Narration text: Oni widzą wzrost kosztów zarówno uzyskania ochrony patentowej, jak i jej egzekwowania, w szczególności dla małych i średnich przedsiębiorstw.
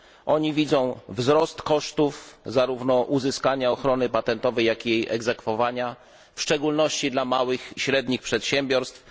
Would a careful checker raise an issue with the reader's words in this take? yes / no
yes